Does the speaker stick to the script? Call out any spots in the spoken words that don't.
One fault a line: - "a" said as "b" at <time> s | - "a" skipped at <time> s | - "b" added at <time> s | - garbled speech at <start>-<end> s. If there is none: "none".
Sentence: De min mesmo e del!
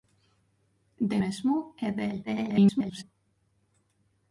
- "min" skipped at 1.2 s
- garbled speech at 2.3-3.0 s